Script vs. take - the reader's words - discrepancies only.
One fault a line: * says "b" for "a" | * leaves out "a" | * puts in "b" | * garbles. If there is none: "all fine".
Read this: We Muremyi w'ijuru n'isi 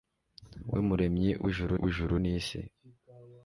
* puts in "w'ijuru"